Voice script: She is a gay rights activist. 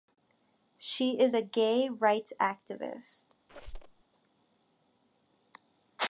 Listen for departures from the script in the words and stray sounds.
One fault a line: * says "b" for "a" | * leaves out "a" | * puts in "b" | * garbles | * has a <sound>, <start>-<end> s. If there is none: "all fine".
* has a squeak, 3.5-4.0 s